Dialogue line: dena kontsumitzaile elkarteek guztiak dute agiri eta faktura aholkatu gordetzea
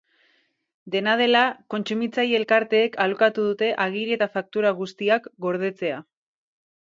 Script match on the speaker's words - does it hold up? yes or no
no